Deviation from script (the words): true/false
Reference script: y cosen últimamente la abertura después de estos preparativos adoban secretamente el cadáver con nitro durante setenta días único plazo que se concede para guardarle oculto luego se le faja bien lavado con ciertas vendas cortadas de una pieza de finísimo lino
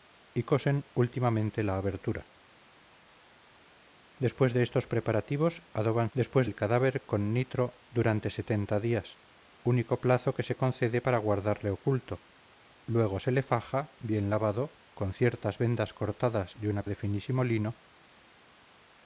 true